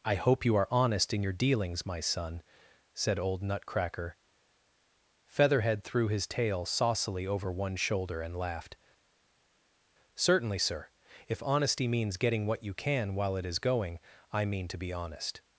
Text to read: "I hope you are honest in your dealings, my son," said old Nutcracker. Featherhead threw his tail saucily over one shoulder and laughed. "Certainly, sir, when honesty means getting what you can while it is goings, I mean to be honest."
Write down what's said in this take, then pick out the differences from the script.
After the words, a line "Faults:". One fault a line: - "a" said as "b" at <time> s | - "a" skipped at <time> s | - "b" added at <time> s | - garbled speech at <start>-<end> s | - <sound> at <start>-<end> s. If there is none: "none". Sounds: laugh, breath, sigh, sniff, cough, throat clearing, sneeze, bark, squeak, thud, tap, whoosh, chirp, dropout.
"I hope you are honest in your dealings, my son," said old Nutcracker. Featherhead threw his tail saucily over one shoulder and laughed. "Certainly, sir, if honesty means getting what you can while it is going, I mean to be honest."
Faults:
- "when" said as "if" at 11.3 s
- "goings" said as "going" at 13.6 s